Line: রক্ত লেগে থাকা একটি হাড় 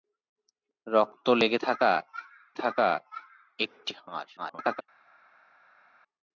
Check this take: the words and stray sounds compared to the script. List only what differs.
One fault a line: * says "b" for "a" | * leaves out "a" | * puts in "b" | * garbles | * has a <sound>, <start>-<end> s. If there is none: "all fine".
* puts in "থাকা"
* garbles